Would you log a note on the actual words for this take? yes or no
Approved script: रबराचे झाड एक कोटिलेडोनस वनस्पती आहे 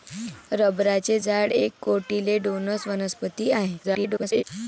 yes